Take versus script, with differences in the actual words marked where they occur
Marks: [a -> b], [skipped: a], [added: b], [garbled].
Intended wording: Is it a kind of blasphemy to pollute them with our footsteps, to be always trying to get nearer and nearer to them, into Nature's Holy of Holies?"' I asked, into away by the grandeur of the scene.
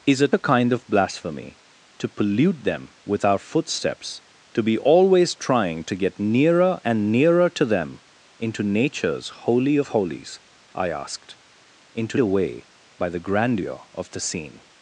Is it a kind of blasphemy to pollute them with our footsteps, to be always trying to get nearer and nearer to them, into Nature's Holy of Holies?"' I asked, into away by the grandeur of the scene.